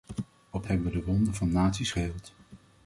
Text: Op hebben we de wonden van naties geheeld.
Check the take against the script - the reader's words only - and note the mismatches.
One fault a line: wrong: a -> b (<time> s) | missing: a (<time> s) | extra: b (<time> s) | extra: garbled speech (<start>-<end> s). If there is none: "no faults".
no faults